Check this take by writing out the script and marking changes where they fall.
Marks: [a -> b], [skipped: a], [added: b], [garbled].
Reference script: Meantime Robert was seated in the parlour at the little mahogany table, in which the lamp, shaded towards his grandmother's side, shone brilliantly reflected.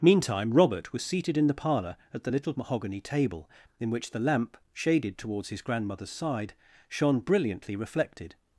Meantime Robert was seated in the parlour at the little mahogany table, in which the lamp, shaded towards his grandmother's side, shone brilliantly reflected.